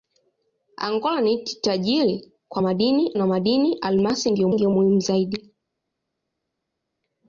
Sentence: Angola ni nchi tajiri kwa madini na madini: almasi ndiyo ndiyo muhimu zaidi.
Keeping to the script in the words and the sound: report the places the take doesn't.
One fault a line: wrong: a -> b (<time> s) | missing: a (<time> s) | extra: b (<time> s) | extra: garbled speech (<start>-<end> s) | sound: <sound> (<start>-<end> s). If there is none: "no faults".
no faults